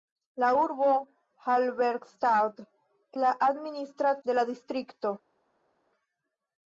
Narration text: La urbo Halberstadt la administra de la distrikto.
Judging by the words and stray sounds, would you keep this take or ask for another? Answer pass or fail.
pass